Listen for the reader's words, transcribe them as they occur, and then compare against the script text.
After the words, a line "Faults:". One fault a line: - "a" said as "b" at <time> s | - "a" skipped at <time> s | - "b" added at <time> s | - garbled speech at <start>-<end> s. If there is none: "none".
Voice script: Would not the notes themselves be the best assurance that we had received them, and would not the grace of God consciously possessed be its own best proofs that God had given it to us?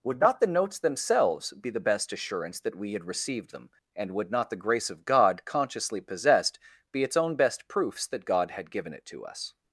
Would not the notes themselves be the best assurance that we had received them, and would not the grace of God consciously possessed be its own best proofs that God had given it to us?
Faults:
none